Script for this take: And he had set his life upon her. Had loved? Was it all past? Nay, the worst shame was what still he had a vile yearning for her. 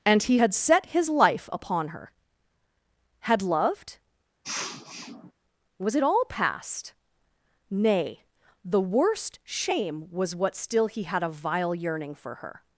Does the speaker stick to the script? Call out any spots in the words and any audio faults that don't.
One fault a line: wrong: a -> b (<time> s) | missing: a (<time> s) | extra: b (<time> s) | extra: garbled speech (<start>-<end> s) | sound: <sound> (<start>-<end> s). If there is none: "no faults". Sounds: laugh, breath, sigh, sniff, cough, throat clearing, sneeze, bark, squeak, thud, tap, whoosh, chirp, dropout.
sound: sniff (4.4-5.3 s)